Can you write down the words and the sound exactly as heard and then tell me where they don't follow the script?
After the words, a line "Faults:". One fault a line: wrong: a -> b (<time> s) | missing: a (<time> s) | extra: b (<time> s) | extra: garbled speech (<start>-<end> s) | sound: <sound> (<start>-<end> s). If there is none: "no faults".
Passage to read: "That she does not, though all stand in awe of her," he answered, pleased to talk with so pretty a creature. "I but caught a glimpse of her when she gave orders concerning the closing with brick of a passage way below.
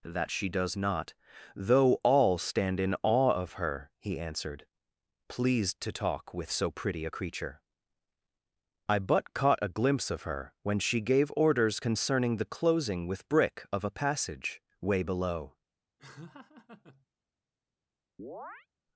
"That she does not, though all stand in awe of her," he answered, pleased to talk with so pretty a creature. "I but caught a glimpse of her when she gave orders concerning the closing with brick of a passage way below.
Faults:
sound: laugh (16.0-17.1 s)
sound: chirp (18.2-18.7 s)